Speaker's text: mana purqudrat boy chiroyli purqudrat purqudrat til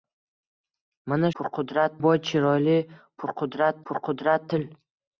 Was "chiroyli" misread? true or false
false